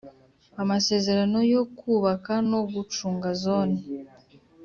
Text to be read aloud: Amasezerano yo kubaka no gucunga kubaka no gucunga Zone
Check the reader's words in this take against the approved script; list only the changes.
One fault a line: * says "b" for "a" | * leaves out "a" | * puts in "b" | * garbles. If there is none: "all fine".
* leaves out "kubaka no gucunga"